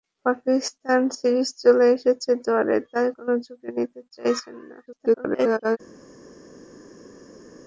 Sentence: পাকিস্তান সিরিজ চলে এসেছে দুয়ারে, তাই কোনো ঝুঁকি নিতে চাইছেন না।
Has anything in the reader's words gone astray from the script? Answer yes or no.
yes